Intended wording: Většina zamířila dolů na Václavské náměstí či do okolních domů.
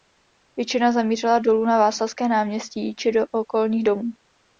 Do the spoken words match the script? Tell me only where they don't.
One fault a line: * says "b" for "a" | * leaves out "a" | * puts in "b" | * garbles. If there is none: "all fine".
all fine